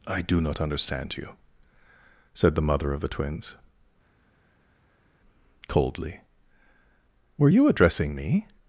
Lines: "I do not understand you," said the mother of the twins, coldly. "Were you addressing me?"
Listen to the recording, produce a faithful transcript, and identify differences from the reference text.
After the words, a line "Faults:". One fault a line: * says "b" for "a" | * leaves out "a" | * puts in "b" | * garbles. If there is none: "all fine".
"I do not understand you," said the mother of the twins, coldly. "Were you addressing me?"
Faults:
all fine